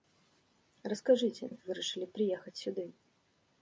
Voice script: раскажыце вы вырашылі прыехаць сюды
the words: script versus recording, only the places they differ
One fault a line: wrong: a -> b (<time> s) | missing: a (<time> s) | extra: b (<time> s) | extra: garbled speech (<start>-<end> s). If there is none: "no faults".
no faults